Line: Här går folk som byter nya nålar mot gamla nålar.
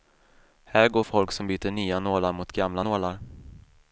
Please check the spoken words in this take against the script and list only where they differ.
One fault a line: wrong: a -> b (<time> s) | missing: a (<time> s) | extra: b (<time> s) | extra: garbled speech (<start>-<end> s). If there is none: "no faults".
no faults